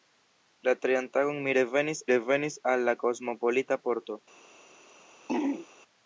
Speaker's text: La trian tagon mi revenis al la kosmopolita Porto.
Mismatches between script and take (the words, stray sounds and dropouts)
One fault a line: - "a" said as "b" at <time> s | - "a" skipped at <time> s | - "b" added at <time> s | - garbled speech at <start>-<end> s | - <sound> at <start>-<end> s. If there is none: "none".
- "revenis" added at 2.1 s
- throat clearing at 5.3-5.7 s